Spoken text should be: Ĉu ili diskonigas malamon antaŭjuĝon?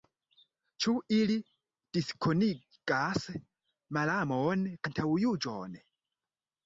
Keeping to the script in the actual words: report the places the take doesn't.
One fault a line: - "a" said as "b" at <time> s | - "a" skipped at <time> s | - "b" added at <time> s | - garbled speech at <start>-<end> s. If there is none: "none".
none